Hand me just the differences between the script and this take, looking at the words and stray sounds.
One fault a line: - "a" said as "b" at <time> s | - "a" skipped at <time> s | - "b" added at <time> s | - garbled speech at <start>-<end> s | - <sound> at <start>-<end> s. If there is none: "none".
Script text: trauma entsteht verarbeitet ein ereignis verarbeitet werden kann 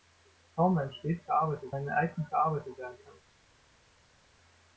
none